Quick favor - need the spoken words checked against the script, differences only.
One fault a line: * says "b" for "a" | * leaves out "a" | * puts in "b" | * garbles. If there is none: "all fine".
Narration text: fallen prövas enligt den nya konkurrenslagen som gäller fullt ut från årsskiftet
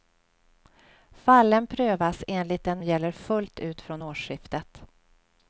* leaves out "nya konkurrenslagen som"